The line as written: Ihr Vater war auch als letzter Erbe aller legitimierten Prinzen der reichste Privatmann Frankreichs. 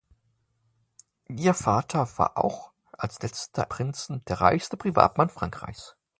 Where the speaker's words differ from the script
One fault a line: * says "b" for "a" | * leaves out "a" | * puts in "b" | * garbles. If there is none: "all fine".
* leaves out "Erbe aller legitimierten"